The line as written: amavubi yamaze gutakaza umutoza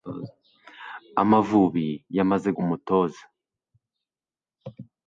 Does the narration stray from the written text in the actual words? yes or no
yes